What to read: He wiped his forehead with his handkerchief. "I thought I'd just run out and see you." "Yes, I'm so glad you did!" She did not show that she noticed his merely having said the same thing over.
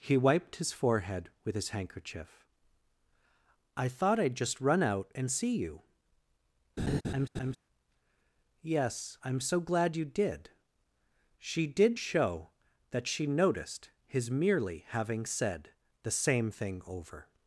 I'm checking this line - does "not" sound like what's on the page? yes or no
no